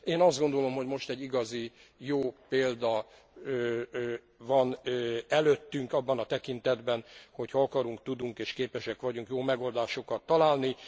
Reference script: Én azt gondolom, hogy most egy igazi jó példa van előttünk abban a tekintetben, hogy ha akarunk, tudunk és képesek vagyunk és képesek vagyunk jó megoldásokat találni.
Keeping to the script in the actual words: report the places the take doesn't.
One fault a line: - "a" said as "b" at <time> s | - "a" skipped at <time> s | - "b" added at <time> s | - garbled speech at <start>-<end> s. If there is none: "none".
- "és képesek vagyunk" skipped at 9.3 s